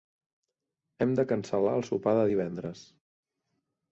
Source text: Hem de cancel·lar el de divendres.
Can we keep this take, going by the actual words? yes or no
no